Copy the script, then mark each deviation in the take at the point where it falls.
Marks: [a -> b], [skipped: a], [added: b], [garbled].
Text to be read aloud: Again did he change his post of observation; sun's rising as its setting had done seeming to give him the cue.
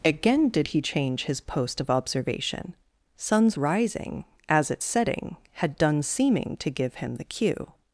Again did he change his post of observation; sun's rising as its setting had done seeming to give him the cue.